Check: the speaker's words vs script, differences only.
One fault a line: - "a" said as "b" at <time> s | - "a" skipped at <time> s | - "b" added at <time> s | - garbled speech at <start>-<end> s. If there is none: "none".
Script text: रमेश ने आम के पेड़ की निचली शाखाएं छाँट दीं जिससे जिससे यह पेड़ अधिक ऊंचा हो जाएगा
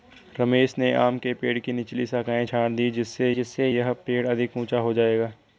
none